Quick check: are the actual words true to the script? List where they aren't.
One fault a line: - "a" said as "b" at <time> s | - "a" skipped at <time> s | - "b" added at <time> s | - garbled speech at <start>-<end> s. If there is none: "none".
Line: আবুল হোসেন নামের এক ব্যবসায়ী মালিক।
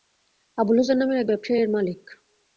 - "এর" added at 1.6 s